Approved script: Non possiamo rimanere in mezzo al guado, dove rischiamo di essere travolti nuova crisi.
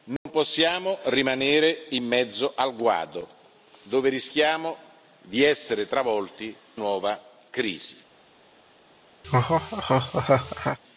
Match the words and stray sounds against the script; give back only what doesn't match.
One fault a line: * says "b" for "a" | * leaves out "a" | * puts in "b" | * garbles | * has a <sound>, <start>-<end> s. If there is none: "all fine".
* has a dropout, 0.2-0.3 s
* has a laugh, 9.2-10.8 s